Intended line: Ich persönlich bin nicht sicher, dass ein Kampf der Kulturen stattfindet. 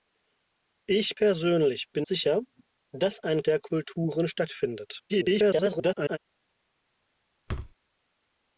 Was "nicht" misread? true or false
true